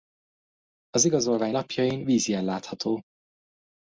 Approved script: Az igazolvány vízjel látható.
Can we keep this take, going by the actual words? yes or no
no